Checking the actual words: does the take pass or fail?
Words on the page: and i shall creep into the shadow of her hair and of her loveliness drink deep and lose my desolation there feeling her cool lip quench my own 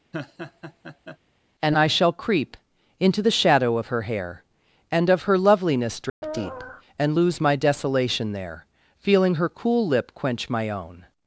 pass